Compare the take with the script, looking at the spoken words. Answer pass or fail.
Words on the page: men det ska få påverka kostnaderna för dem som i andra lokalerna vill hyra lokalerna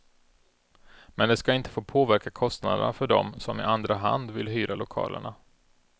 fail